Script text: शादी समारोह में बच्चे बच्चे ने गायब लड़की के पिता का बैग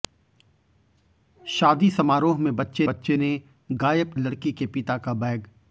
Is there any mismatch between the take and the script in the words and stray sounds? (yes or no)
no